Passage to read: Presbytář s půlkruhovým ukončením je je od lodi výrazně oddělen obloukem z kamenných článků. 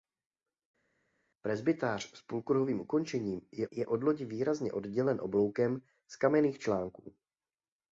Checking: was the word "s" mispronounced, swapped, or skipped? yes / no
no